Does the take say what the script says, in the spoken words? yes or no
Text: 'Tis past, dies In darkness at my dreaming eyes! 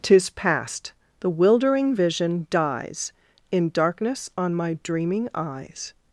no